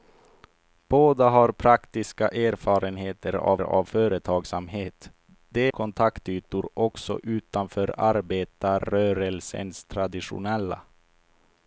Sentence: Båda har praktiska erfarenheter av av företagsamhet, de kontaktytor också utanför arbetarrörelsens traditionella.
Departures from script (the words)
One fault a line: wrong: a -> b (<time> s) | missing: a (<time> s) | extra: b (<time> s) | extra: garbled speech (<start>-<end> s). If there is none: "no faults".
no faults